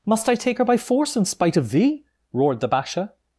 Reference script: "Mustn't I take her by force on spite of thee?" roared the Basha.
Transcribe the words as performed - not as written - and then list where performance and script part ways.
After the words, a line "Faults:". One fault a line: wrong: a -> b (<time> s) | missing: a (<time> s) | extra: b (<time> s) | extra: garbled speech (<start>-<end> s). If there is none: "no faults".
"Must I take her by force in spite of thee?" roared the Basha.
Faults:
wrong: Mustn't -> Must (0.1 s)
wrong: on -> in (1.1 s)